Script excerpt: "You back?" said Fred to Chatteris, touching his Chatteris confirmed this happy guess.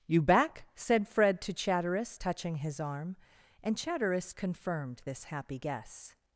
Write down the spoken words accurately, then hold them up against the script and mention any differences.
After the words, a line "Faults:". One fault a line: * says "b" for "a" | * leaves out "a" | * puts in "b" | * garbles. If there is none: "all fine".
"You back?" said Fred to Chatteris, touching his arm, and Chatteris confirmed this happy guess.
Faults:
* puts in "arm and"